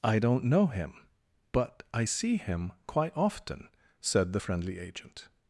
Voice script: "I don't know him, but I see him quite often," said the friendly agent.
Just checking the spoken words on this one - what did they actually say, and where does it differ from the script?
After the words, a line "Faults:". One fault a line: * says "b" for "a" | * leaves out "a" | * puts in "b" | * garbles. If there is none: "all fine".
"I don't know him, but I see him quite often," said the friendly agent.
Faults:
all fine